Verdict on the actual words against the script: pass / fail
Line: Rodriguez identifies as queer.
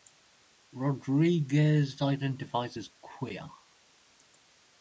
pass